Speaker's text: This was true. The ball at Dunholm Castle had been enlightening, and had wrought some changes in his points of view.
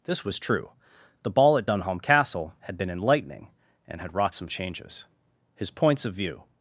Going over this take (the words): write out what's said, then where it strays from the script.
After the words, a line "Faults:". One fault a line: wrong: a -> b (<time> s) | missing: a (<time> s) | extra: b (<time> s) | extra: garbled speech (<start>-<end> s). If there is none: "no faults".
This was true. The ball at Dunholm Castle had been enlightening, and had wrought some changes his points of view.
Faults:
missing: in (5.0 s)